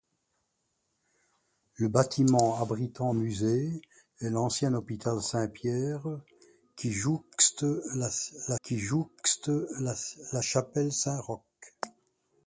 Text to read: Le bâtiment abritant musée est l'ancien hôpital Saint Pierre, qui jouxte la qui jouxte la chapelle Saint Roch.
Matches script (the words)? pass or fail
pass